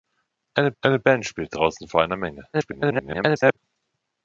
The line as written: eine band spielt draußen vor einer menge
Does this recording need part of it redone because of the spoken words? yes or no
yes